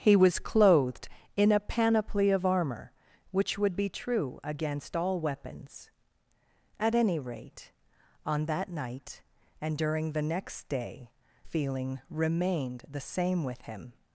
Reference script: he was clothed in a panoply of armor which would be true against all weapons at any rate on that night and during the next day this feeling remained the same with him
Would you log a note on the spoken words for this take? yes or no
yes